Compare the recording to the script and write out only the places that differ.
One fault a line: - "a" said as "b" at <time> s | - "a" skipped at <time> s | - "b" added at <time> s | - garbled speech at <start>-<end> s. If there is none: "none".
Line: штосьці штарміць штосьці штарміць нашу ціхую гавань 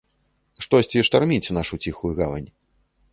- "штосьці штарміць" skipped at 1.5 s